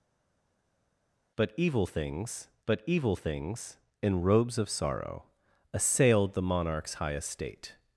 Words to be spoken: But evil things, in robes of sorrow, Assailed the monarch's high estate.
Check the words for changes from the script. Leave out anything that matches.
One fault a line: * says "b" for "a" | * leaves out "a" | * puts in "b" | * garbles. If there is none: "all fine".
* puts in "but evil things"